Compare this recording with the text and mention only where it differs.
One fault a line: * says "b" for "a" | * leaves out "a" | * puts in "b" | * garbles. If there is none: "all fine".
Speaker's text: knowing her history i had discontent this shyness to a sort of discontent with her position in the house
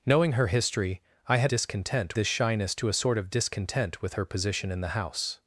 all fine